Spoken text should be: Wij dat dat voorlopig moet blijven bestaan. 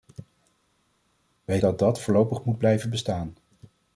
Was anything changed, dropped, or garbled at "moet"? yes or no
no